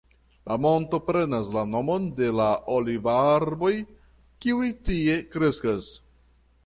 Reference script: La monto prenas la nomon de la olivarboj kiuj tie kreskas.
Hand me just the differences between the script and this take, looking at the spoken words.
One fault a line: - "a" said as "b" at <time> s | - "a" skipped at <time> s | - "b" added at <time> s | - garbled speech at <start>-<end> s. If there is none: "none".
none